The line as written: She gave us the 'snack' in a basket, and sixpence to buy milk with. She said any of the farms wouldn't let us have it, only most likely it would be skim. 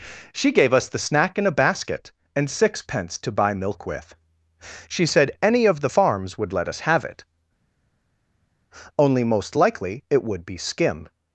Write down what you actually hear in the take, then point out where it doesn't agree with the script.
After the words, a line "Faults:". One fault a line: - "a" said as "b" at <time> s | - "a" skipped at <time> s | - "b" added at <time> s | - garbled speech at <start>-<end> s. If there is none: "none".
She gave us the 'snack' in a basket, and sixpence to buy milk with. She said any of the farms would let us have it, only most likely it would be skim.
Faults:
- "wouldn't" said as "would" at 6.4 s